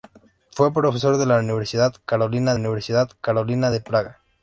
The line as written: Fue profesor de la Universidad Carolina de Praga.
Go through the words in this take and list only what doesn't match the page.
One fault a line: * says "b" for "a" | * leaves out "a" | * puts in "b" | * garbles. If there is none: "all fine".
* puts in "Universidad Carolina"